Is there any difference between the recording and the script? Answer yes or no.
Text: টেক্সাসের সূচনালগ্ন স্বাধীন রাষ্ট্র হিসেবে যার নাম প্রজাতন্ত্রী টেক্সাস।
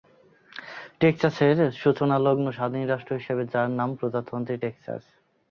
no